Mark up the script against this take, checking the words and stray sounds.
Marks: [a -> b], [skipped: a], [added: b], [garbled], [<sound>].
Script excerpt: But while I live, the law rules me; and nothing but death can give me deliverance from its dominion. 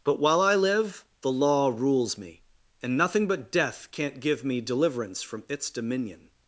But while I live, the law rules me; and nothing but death [can -> can't] give me deliverance from its dominion.